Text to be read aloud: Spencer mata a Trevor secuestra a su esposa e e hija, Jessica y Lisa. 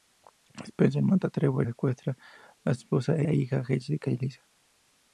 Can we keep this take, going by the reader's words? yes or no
yes